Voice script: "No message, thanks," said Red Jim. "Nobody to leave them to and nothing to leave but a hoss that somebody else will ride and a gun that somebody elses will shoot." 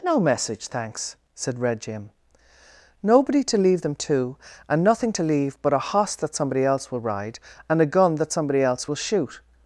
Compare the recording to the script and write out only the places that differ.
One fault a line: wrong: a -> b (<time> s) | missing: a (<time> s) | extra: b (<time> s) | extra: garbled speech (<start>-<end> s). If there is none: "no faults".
wrong: elses -> else (8.6 s)